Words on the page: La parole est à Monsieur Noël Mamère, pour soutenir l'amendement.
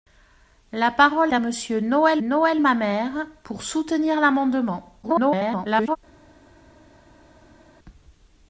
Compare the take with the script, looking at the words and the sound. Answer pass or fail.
fail